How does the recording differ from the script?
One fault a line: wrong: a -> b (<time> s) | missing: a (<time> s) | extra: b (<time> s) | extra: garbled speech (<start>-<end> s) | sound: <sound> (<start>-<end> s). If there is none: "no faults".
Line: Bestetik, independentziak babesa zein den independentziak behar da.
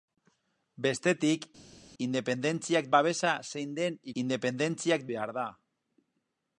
no faults